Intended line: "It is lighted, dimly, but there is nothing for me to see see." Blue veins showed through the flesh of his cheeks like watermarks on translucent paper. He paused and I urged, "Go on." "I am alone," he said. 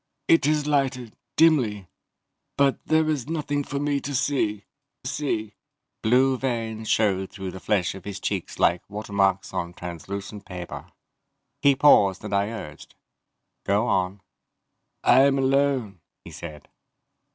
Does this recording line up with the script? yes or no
yes